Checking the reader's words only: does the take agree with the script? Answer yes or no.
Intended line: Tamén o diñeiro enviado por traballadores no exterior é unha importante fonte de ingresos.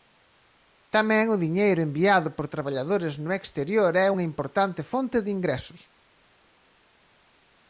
yes